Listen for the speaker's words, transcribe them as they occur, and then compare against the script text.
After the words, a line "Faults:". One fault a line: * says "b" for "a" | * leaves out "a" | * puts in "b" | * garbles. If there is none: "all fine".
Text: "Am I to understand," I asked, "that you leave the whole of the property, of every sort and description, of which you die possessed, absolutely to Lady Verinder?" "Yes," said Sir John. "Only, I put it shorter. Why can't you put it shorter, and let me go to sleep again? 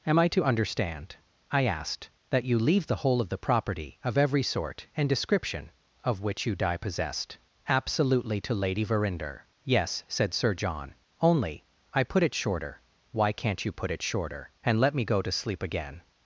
"Am I to understand," I asked, "that you leave the whole of the property, of every sort and description, of which you die possessed, absolutely to Lady Verinder?" "Yes," said Sir John. "Only, I put it shorter. Why can't you put it shorter, and let me go to sleep again?
Faults:
all fine